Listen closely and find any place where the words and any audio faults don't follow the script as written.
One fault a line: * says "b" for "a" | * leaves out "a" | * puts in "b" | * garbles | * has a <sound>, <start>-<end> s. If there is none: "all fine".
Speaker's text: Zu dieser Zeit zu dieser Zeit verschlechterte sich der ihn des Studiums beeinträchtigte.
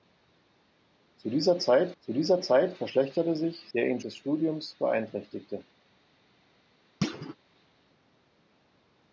* has a thud, 7.0-7.4 s